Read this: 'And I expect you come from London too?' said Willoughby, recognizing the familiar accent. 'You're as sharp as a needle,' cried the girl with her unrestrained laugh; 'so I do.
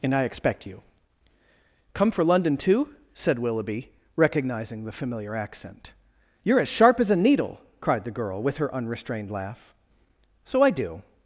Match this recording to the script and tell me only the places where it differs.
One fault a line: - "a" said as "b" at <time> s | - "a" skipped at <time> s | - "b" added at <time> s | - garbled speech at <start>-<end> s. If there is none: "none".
- "from" said as "for" at 2.1 s